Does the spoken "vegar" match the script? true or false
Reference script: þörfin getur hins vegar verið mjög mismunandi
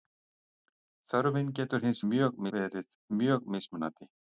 false